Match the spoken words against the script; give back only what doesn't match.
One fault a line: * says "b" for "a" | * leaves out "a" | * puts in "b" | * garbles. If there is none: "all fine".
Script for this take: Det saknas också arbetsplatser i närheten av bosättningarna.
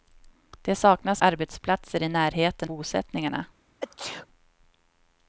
* leaves out "också"
* leaves out "av"